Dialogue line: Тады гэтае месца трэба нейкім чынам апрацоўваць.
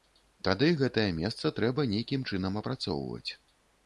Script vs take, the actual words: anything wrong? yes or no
no